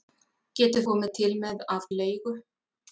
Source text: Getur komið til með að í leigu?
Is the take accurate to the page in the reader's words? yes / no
yes